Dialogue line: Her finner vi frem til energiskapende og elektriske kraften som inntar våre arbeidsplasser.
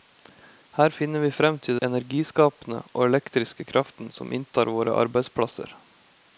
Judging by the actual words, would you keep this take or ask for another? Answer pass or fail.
pass